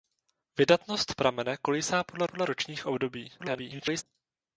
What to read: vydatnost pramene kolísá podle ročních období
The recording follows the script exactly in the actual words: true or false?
false